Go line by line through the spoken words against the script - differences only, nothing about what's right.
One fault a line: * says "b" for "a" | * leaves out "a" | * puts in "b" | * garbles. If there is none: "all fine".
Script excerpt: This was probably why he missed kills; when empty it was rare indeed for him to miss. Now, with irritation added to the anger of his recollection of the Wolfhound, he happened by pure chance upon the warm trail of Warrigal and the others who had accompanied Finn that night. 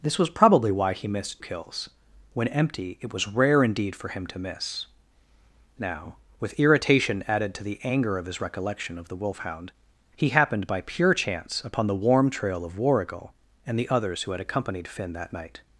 all fine